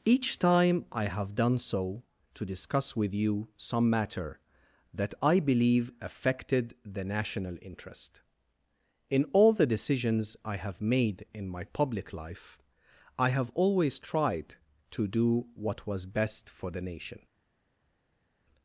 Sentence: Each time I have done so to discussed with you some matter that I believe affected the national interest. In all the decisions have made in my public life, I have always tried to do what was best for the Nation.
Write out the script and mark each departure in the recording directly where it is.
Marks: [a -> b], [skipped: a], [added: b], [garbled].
Each time I have done so to [discussed -> discuss] with you some matter that I believe affected the national interest. In all the decisions [added: I] have made in my public life, I have always tried to do what was best for the Nation.